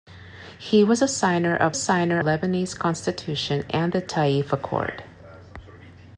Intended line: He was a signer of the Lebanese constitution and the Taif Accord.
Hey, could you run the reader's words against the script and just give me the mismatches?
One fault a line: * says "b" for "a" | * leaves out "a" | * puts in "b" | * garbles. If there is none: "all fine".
* says "signer" for "the"